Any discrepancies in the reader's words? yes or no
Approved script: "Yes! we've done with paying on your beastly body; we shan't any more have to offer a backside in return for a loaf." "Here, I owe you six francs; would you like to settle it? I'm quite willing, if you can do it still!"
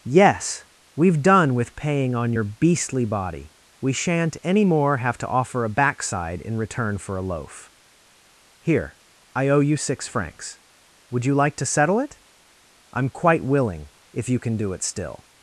no